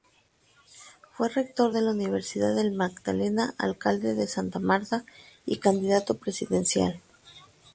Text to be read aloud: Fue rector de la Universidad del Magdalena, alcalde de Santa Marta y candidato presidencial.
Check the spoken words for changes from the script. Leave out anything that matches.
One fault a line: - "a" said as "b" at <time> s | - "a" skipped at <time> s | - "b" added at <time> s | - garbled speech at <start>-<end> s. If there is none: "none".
none